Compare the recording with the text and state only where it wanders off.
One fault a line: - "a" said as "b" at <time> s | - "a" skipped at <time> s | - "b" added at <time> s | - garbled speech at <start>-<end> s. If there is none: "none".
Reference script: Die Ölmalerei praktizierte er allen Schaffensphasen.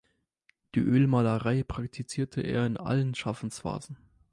- "in" added at 2.7 s